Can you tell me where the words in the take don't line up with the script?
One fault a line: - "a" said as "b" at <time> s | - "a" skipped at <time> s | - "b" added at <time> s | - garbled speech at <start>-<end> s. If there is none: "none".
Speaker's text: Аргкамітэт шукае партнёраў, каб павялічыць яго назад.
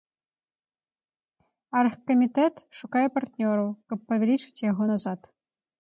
none